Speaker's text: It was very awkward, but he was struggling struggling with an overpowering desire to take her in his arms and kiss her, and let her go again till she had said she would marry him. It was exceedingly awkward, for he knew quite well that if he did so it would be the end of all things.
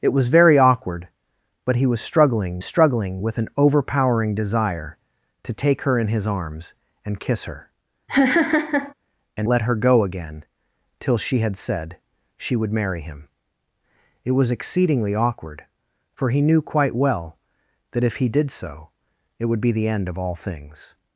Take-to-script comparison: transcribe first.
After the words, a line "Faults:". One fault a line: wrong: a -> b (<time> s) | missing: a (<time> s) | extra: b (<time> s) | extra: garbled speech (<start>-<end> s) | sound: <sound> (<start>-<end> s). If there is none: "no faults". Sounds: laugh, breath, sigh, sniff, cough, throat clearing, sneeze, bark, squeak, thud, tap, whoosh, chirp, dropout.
It was very awkward, but he was struggling struggling with an overpowering desire to take her in his arms and kiss her, and let her go again till she had said she would marry him. It was exceedingly awkward, for he knew quite well that if he did so it would be the end of all things.
Faults:
sound: laugh (8.1-8.9 s)